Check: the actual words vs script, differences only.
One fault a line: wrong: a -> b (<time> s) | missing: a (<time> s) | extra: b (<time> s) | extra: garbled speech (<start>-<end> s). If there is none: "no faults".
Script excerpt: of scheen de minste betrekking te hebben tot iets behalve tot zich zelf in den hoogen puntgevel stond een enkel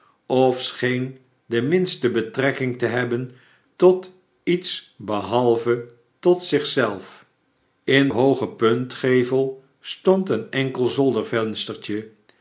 missing: den (8.1 s)